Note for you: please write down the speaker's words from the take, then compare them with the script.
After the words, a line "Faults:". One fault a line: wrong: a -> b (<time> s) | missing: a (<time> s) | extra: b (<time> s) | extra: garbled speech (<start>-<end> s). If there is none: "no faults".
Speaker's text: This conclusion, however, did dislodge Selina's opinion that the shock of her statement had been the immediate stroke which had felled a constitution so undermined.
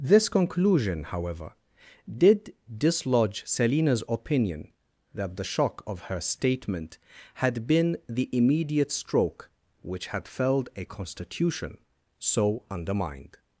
This conclusion, however, did dislodge Selina's opinion that the shock of her statement had been the immediate stroke which had felled a constitution so undermined.
Faults:
no faults